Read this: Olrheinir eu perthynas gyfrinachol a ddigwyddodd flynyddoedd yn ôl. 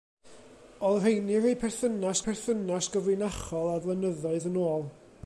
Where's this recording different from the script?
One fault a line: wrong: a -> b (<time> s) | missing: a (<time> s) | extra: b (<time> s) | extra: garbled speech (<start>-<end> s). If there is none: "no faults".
extra: perthynas (2.3 s)
missing: ddigwyddodd (3.8 s)